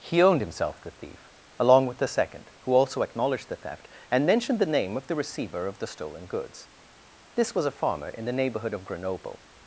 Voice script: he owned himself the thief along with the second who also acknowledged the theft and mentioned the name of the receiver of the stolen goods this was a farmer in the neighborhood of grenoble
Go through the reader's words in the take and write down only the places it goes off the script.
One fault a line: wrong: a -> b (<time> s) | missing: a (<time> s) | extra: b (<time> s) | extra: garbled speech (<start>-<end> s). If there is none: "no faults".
no faults